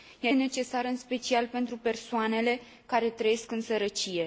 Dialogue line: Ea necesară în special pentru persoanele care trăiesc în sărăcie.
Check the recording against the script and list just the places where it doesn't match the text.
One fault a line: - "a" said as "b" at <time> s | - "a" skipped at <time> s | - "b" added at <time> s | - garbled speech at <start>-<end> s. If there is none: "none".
none